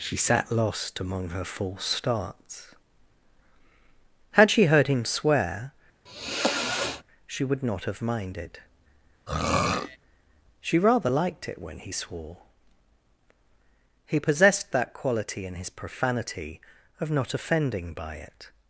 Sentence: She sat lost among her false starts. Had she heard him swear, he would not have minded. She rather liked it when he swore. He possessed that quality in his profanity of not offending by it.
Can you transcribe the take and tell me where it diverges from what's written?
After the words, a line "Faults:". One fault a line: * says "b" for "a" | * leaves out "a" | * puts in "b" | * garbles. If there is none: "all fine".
She sat lost among her false starts. Had she heard him swear, she would not have minded. She rather liked it when he swore. He possessed that quality in his profanity of not offending by it.
Faults:
* says "she" for "he"